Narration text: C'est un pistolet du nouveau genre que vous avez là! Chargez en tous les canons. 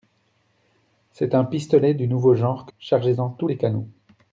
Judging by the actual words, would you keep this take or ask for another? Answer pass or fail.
fail